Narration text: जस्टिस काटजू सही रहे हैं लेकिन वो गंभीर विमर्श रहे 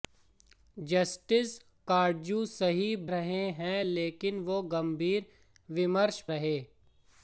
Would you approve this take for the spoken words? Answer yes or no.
yes